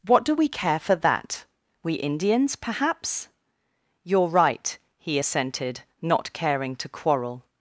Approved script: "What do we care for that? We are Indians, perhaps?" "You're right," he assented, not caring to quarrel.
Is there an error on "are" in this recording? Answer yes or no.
yes